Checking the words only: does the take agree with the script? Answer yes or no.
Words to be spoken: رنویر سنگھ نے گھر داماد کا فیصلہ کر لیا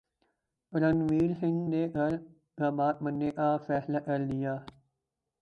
no